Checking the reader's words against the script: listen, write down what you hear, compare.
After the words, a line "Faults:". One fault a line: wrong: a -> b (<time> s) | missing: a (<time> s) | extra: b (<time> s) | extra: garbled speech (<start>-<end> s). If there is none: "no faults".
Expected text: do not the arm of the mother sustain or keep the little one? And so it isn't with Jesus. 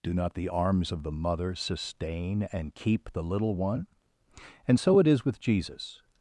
do not the arms of the mother sustain and keep the little one? And so it is with Jesus.
Faults:
wrong: arm -> arms (0.5 s)
wrong: or -> and (2.5 s)
wrong: isn't -> is (5.1 s)